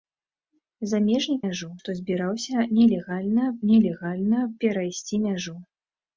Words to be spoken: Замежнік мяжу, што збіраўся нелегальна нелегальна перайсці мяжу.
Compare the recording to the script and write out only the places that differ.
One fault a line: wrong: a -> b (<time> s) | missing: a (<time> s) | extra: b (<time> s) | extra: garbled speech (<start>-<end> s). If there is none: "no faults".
no faults